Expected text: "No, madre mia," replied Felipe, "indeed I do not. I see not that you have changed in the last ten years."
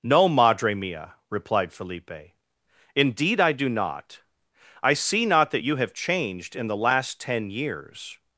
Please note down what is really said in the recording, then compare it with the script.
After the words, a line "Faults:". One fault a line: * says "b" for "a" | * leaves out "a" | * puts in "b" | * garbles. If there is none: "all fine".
"No, madre mia," replied Felipe, "indeed I do not. I see not that you have changed in the last ten years."
Faults:
all fine